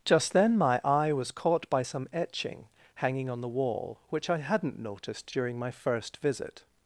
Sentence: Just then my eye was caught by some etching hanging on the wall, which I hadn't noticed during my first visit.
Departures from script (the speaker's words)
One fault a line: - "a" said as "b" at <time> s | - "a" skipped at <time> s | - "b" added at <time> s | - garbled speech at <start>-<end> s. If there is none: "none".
none